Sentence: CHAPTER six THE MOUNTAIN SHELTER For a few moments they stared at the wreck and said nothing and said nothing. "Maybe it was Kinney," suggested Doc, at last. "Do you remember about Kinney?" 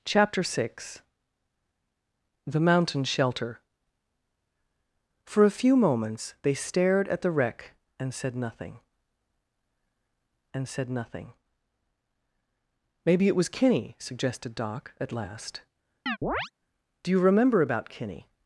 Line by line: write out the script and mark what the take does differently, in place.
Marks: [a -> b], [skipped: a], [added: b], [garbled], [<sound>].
CHAPTER six THE MOUNTAIN SHELTER For a few moments they stared at the wreck and said nothing and said nothing. "Maybe it was Kinney," suggested Doc, at last. [chirp] "Do you remember about Kinney?"